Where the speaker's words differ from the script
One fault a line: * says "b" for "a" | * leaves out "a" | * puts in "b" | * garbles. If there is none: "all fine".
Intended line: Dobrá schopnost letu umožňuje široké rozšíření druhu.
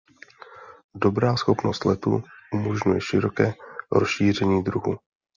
all fine